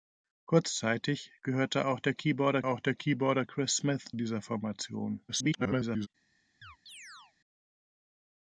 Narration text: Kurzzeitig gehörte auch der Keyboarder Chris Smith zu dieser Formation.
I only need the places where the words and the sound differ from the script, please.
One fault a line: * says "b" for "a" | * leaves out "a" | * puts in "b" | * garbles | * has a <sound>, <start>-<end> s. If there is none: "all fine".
* puts in "auch der Keyboarder"
* leaves out "zu"
* garbles
* has a chirp, 6.6-7.3 s